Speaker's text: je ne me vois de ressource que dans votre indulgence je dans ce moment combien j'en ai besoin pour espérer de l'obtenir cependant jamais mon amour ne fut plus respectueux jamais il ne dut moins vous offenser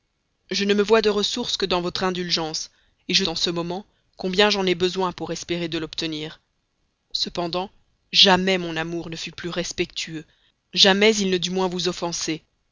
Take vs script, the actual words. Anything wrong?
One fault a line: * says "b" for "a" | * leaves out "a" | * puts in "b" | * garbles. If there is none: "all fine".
all fine